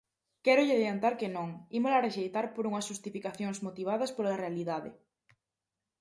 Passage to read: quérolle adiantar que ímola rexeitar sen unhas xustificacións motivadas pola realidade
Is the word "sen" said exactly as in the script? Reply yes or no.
no